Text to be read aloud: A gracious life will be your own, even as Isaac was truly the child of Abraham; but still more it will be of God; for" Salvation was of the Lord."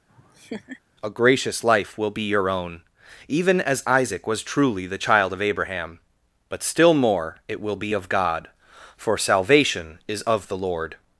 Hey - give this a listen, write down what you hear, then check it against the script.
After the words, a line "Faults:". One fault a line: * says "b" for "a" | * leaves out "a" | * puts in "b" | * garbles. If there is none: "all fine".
A gracious life will be your own, even as Isaac was truly the child of Abraham; but still more it will be of God; for" Salvation is of the Lord."
Faults:
* says "is" for "was"